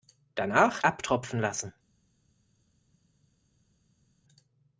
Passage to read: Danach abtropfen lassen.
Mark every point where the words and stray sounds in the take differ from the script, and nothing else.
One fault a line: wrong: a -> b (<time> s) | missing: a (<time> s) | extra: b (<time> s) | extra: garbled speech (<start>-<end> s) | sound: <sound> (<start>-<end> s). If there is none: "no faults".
no faults